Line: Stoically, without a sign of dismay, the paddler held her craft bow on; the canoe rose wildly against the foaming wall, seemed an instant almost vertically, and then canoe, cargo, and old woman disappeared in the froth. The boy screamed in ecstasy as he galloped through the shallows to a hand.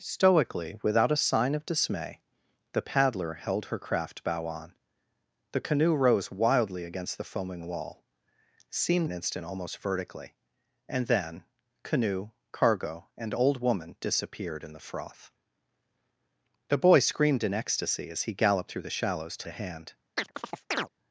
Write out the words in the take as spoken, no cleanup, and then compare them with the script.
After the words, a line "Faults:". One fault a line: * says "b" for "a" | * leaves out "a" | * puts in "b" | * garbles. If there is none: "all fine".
Stoically, without a sign of dismay, the paddler held her craft bow on; the canoe rose wildly against the foaming wall, seemed an instant almost vertically, and then canoe, cargo, and old woman disappeared in the froth. The boy screamed in ecstasy as he galloped through the shallows to a hand.
Faults:
all fine